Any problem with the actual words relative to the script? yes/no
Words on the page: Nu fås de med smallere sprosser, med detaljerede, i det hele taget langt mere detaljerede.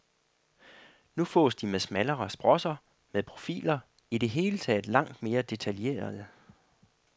yes